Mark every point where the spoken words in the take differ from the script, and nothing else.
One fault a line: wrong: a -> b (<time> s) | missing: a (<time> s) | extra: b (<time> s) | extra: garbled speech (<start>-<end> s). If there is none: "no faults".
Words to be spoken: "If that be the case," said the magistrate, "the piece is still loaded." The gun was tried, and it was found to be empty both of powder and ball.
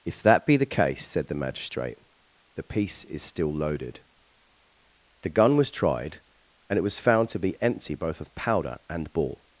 no faults